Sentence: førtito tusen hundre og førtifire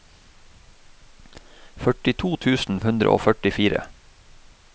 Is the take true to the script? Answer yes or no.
yes